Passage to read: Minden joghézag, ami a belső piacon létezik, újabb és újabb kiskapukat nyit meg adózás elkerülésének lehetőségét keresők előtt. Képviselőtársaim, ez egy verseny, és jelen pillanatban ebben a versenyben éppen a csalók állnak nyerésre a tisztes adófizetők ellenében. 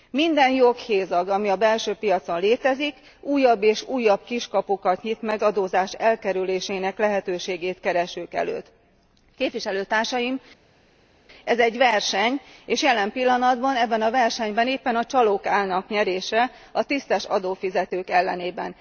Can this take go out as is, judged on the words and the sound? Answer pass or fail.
pass